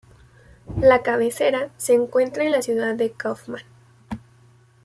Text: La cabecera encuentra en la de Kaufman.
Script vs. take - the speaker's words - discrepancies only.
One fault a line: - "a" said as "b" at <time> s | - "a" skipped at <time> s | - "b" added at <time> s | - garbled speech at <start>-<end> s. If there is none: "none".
- "se" added at 1.8 s
- "ciudad" added at 2.6 s